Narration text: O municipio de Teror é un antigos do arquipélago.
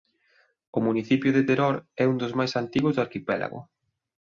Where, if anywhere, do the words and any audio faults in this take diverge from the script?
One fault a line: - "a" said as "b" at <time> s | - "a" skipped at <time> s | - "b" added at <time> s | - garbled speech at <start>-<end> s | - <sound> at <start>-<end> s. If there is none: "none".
- "dos máis" added at 2.2 s